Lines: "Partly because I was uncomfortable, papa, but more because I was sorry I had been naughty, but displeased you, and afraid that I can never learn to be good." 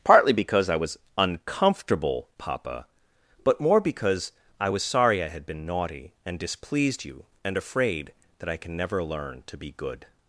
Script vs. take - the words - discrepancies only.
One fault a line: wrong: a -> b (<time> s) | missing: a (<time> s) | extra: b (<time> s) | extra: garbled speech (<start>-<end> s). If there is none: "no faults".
wrong: but -> and (6.2 s)